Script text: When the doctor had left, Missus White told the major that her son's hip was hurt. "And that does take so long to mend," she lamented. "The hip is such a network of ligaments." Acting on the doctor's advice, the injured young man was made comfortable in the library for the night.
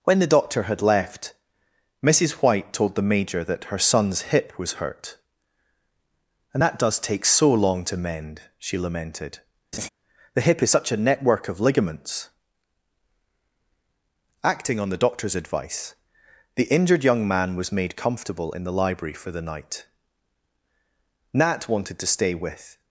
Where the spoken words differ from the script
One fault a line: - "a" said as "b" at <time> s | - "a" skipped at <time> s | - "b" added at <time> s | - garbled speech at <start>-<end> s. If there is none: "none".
- "Nat wanted to stay with" added at 21.3 s